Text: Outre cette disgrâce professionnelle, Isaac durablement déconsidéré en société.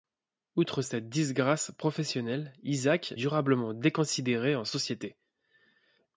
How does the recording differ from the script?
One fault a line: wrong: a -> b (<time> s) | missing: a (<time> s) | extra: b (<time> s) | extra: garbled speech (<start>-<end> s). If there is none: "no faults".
no faults